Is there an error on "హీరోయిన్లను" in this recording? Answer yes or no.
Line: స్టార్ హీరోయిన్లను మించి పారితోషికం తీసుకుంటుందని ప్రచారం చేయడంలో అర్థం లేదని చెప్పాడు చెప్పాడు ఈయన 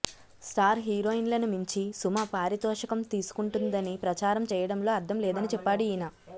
no